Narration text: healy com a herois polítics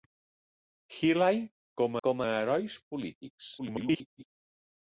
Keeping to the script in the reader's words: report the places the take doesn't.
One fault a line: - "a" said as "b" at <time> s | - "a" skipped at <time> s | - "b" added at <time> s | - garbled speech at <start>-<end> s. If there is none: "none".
- "com" added at 2.1 s
- garbled speech at 3.6-4.2 s